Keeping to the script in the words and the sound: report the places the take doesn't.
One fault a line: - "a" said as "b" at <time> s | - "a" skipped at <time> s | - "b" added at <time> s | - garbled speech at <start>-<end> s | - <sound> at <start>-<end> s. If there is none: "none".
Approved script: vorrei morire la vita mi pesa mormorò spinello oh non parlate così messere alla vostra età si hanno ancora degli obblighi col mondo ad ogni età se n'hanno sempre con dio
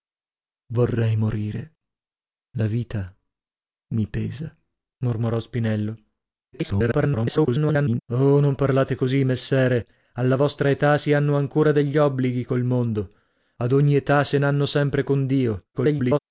- garbled speech at 6.5-8.0 s
- garbled speech at 15.7-16.2 s